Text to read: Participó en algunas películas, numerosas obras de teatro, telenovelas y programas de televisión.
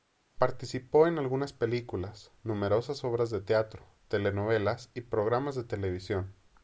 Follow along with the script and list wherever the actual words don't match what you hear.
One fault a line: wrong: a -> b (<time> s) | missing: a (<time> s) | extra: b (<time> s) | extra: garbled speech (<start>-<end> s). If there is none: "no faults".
no faults